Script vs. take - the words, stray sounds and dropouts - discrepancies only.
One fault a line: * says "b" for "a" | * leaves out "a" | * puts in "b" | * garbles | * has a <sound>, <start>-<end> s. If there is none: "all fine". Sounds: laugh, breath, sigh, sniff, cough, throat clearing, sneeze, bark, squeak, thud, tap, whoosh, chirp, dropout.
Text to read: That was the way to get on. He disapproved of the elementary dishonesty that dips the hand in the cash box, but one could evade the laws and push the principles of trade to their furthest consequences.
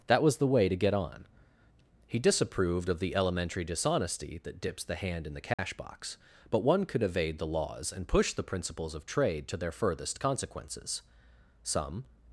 * has a dropout, 5.5-5.6 s
* puts in "Some"